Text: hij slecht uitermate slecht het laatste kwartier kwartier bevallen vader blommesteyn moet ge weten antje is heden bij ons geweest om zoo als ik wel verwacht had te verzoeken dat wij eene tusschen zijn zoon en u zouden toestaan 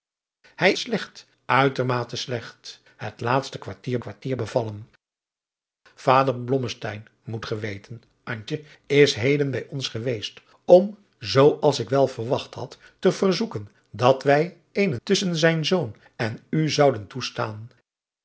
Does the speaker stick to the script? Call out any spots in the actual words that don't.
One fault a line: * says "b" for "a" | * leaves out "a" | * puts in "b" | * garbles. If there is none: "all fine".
all fine